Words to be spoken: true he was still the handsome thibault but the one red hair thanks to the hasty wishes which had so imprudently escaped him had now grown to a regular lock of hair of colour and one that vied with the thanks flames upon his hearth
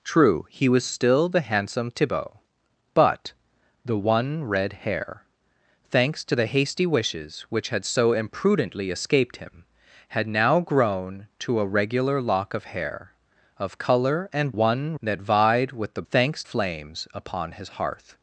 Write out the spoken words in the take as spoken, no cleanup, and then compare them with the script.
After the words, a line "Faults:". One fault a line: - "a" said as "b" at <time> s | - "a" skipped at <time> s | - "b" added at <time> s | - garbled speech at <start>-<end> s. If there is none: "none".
true he was still the handsome thibault but the one red hair thanks to the hasty wishes which had so imprudently escaped him had now grown to a regular lock of hair of colour and one that vied with the thanks flames upon his hearth
Faults:
none